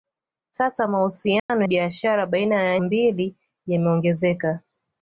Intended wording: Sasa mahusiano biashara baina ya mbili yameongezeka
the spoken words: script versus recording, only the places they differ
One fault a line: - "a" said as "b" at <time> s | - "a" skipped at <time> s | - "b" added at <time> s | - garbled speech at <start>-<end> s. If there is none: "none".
none